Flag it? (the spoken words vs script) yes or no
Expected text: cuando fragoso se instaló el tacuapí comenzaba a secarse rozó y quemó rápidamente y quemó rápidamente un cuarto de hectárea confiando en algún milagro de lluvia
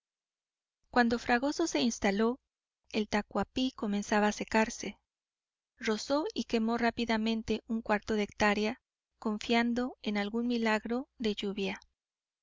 yes